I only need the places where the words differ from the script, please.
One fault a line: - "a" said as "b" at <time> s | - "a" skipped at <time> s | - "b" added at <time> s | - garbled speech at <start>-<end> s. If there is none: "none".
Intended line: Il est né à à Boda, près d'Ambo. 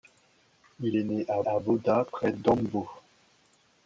none